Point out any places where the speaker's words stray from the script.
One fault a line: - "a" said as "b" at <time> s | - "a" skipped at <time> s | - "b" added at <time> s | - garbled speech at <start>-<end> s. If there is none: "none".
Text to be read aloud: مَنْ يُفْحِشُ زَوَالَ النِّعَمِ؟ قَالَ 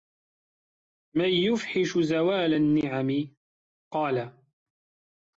none